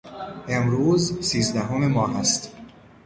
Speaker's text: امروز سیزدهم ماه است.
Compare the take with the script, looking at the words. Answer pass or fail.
pass